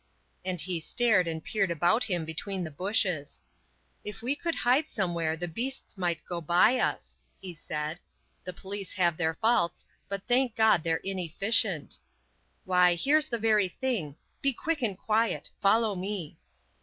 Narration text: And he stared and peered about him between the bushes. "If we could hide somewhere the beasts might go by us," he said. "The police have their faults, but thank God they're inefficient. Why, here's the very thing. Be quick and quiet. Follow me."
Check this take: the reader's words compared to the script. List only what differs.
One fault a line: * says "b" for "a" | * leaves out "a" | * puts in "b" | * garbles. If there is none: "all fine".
all fine